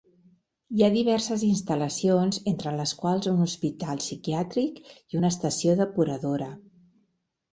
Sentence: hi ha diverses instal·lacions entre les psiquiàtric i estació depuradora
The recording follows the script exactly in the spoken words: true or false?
false